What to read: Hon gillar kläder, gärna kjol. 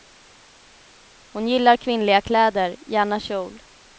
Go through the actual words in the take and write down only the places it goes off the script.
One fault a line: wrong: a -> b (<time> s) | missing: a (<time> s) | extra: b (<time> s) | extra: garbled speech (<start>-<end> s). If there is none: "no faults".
extra: kvinnliga (1.8 s)